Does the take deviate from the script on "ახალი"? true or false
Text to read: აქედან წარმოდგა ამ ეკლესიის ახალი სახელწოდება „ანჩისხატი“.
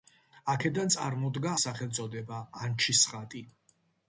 true